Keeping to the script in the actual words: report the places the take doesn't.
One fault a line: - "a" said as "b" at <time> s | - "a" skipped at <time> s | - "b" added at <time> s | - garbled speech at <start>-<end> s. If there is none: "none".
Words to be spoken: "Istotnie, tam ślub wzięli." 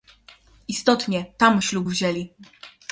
none